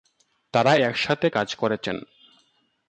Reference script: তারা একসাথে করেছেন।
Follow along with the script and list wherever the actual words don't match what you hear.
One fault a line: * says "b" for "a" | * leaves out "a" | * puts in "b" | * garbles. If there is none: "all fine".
* puts in "কাজ"